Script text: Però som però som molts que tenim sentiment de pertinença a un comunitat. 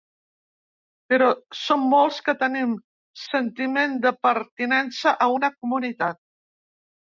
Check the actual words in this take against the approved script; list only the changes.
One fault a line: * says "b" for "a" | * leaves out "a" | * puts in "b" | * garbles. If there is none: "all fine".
* leaves out "però som"
* says "una" for "un"